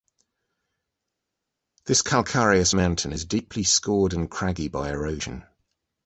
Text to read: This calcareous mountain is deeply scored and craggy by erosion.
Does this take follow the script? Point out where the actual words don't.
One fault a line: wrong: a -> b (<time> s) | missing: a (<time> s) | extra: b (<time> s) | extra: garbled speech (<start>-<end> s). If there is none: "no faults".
no faults